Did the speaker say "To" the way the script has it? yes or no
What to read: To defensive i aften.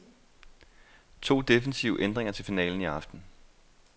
yes